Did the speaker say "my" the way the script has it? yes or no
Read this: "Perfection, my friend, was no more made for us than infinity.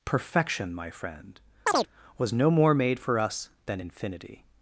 yes